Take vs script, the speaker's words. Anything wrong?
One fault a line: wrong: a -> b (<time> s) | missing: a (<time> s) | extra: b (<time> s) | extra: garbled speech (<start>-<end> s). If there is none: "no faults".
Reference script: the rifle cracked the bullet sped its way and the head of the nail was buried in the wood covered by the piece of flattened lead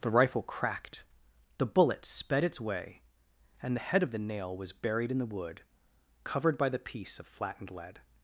no faults